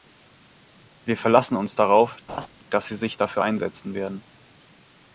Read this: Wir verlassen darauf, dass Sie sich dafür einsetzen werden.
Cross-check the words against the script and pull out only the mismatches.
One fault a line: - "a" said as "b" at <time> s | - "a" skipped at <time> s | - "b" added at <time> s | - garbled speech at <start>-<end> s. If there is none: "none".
- "uns" added at 1.6 s